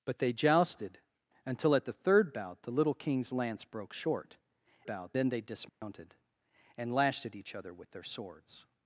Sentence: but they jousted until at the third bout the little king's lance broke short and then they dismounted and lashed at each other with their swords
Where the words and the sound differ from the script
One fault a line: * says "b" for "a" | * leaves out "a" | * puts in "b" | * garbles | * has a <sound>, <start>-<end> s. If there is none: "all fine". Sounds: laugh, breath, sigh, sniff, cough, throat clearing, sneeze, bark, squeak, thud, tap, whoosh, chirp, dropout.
* says "bout" for "and"
* has a dropout, 5.7-5.8 s